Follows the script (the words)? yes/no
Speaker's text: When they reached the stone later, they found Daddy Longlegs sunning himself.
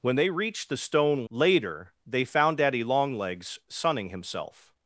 yes